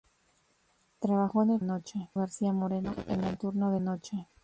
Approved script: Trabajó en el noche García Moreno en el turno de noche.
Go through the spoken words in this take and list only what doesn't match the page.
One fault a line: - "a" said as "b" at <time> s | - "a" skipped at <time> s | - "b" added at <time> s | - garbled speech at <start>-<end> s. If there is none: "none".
none